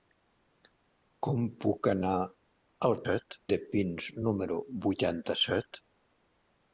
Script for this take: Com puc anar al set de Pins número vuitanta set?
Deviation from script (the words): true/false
false